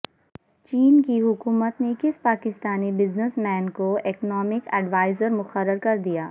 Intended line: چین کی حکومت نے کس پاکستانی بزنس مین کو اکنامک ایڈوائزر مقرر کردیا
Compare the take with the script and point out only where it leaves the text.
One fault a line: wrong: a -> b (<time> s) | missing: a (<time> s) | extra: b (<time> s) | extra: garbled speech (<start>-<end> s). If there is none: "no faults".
no faults